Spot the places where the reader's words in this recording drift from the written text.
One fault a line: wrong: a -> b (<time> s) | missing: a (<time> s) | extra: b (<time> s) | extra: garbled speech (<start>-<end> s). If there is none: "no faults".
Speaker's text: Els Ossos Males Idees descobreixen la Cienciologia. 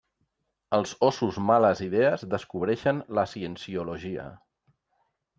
no faults